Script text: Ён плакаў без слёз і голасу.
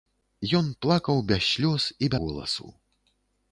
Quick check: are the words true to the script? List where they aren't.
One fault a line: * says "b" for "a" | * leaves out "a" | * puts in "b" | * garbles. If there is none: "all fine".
all fine